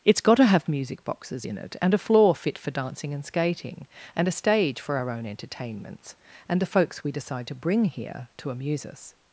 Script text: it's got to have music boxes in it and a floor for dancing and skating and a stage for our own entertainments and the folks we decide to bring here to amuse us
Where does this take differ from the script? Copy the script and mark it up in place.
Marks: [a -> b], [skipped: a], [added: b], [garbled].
it's got to have music boxes in it and a floor [added: fit] for dancing and skating and a stage for our own entertainments and the folks we decide to bring here to amuse us